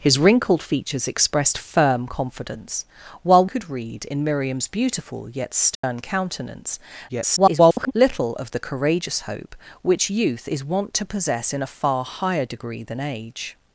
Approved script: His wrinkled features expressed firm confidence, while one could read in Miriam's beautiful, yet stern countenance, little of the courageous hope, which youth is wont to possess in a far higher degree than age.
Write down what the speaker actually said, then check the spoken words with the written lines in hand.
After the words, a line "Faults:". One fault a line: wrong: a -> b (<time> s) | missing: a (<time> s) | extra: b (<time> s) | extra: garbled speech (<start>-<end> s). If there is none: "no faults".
His wrinkled features expressed firm confidence, while could read in Miriam's beautiful, yet stern countenance, [garbled] little of the courageous hope, which youth is wont to possess in a far higher degree than age.
Faults:
missing: one (3.5 s)
extra: garbled speech (7.1-7.9 s)